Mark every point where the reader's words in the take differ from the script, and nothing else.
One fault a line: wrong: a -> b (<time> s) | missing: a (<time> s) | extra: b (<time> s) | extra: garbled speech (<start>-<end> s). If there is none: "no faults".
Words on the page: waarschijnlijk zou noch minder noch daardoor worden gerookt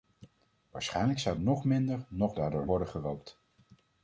no faults